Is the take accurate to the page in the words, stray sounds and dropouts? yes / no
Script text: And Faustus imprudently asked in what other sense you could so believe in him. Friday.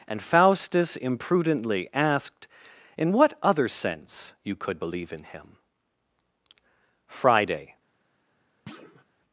no